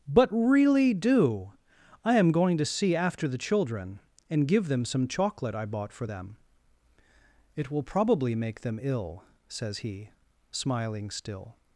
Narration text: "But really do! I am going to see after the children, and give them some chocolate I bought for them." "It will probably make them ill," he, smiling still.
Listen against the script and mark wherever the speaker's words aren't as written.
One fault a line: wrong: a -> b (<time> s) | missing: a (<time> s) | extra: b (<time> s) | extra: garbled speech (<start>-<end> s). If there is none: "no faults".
extra: says (9.5 s)